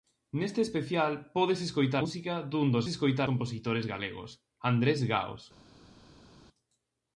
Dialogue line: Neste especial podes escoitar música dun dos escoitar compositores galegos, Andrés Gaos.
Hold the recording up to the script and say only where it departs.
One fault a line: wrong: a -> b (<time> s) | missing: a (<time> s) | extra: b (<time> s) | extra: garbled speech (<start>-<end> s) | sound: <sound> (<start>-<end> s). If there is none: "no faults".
no faults